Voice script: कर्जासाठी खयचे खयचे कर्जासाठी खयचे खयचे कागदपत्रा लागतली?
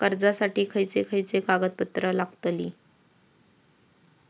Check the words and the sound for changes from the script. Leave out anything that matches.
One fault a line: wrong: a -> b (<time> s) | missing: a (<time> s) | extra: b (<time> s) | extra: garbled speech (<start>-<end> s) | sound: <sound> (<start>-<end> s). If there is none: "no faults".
missing: कर्जासाठी खयचे खयचे (1.4 s)